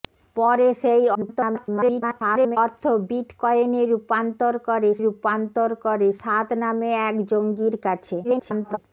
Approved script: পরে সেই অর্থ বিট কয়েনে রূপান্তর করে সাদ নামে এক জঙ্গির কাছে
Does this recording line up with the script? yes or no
no